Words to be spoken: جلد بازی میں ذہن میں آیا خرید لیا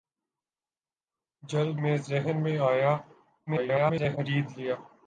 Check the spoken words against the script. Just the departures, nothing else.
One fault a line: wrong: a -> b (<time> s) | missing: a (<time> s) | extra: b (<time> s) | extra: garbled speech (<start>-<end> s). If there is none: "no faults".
missing: بازی (1.8 s)
extra: garbled speech (3.5-4.2 s)